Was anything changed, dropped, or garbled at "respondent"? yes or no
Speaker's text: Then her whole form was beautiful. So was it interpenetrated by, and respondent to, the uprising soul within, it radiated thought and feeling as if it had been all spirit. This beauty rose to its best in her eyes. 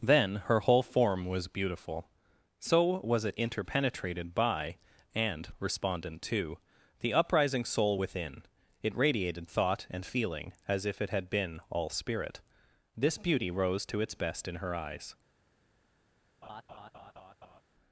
no